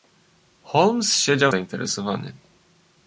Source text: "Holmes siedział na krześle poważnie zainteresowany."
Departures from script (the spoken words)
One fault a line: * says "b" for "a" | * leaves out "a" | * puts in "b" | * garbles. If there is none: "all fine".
* leaves out "na krześle poważnie"